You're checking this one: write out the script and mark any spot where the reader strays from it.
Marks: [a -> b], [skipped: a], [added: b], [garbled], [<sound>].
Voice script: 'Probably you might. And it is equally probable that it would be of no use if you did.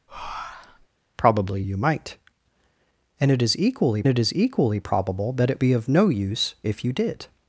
[breath] 'Probably you might. And it is equally [added: it is equally] probable that it [skipped: would] be of no use if you did.